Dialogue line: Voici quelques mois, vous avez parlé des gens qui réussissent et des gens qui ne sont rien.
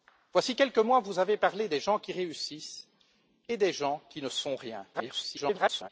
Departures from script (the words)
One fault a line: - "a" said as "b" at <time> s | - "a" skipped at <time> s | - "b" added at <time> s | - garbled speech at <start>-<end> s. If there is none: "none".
- garbled speech at 4.9-5.9 s